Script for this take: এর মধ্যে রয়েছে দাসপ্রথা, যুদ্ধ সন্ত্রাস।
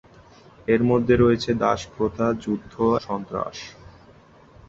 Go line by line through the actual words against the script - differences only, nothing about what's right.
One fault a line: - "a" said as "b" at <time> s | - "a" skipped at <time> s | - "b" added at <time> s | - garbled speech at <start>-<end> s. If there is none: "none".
none